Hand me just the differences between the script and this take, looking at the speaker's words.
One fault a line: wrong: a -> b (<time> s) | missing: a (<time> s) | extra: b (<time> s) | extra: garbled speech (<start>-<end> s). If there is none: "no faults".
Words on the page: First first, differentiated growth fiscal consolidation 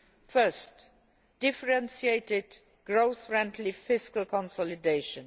missing: first (0.9 s)
extra: friendly (3.3 s)